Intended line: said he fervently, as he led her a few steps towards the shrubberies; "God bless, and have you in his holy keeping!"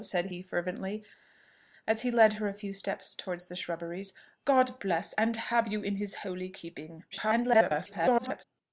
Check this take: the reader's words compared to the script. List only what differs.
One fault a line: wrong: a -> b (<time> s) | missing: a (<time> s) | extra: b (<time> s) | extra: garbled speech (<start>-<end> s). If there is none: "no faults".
extra: garbled speech (7.1-8.4 s)